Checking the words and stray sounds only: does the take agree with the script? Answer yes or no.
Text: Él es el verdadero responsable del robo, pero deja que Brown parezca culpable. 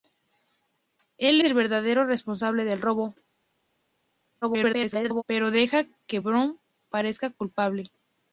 no